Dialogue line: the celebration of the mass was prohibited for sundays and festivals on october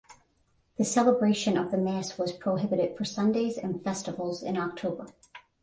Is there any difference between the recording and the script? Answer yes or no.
yes